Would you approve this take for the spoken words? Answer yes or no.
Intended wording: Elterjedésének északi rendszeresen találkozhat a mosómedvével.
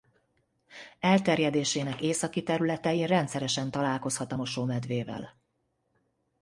no